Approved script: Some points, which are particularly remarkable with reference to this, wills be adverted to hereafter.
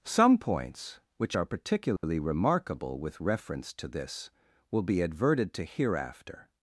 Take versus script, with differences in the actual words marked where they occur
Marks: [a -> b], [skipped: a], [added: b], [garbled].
Some points, which are particularly remarkable with reference to this, [wills -> will] be adverted to hereafter.